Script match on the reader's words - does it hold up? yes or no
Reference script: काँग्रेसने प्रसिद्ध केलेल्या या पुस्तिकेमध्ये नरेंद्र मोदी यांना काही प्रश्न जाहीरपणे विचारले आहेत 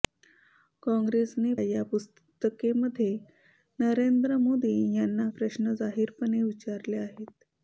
no